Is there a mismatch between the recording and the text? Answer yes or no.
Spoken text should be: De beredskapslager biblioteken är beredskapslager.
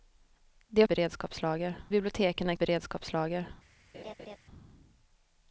no